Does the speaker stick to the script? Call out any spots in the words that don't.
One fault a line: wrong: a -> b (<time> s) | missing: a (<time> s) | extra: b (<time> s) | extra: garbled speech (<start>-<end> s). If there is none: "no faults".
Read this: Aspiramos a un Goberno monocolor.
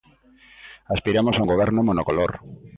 no faults